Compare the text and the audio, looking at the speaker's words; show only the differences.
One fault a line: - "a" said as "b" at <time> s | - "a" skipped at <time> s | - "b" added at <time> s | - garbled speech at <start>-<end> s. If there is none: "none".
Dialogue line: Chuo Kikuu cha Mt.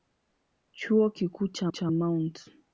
- "cha" added at 1.7 s